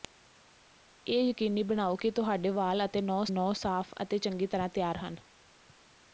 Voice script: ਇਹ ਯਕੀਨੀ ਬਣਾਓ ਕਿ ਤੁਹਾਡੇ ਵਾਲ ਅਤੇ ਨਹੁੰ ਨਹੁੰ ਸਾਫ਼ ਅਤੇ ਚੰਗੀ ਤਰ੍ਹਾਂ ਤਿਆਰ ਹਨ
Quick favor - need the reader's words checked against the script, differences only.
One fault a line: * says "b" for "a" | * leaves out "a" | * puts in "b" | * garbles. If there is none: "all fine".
all fine